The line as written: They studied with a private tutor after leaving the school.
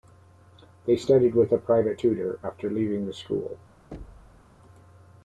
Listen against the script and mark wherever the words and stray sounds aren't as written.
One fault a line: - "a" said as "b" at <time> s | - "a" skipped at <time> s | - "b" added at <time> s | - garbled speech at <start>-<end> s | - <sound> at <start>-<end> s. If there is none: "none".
- thud at 3.9-4.6 s